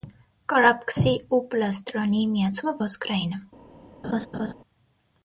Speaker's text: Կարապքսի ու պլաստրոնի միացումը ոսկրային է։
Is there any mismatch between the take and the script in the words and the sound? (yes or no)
yes